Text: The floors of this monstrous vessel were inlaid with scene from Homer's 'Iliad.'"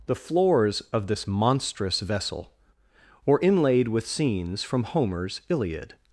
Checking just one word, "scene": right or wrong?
wrong